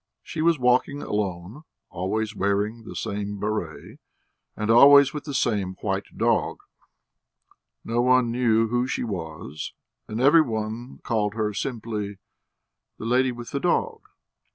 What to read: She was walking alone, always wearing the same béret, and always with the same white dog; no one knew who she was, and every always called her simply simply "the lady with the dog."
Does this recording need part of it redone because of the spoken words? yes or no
yes